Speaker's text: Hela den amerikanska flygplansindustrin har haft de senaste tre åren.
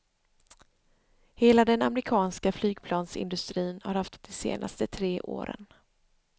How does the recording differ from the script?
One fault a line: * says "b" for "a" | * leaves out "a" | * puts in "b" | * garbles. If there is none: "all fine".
all fine